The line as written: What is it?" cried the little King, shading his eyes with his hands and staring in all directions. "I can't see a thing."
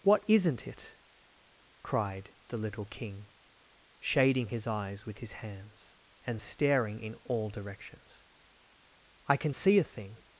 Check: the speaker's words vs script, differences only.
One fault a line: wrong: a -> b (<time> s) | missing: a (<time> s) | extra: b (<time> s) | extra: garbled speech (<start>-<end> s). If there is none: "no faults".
wrong: is -> isn't (0.3 s)
wrong: can't -> can (9.4 s)